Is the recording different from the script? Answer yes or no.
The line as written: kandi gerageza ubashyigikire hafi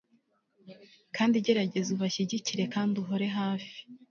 yes